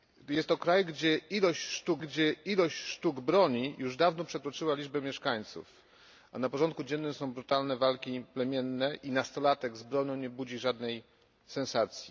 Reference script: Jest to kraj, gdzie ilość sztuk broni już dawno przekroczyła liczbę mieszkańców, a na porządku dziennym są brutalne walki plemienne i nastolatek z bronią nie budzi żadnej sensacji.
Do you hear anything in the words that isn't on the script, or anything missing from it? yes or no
yes